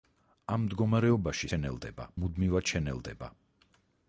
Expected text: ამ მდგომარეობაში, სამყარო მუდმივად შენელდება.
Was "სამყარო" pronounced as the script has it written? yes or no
no